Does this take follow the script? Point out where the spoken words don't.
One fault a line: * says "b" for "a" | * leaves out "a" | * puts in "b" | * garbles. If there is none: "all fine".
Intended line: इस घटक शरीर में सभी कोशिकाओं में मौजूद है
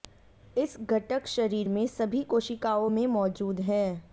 all fine